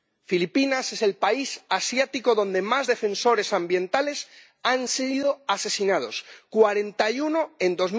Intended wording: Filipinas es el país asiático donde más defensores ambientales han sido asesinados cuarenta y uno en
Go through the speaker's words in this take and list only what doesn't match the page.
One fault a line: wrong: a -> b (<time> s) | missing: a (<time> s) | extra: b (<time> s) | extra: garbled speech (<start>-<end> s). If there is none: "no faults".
no faults